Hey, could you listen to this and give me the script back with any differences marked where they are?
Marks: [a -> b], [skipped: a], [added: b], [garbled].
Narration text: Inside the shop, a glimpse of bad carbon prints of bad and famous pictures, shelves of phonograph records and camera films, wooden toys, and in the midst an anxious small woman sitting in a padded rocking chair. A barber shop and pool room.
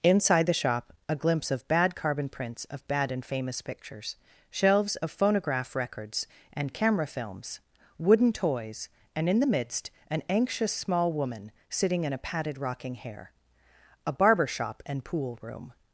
Inside the shop, a glimpse of bad carbon prints of bad and famous pictures, shelves of phonograph records and camera films, wooden toys, and in the midst an anxious small woman sitting in a padded rocking [chair. -> hair] A barber shop and pool room.